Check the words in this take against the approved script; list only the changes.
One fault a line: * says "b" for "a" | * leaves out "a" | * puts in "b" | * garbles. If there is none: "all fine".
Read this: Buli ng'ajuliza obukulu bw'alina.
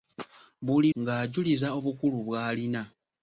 all fine